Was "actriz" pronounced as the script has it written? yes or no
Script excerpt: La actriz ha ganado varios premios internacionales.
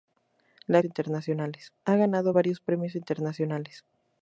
no